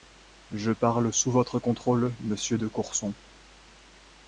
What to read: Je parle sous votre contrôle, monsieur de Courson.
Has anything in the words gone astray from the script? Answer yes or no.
no